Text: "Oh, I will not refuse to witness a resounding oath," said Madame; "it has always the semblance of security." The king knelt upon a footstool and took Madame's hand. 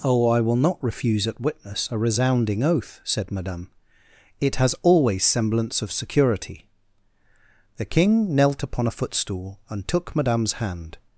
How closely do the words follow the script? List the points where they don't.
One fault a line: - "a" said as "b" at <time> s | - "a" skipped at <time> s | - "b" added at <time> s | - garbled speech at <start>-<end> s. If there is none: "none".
- "to" said as "at" at 1.3 s
- "the" skipped at 5.2 s